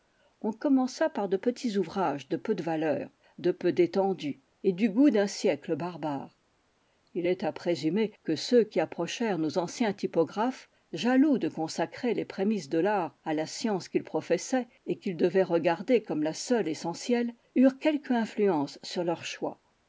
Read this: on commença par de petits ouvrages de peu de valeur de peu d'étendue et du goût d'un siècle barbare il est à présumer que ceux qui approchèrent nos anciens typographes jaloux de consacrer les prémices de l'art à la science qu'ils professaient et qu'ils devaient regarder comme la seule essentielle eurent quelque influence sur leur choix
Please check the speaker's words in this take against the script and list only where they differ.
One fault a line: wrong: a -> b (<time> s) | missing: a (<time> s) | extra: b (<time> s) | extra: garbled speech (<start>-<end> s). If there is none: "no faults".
no faults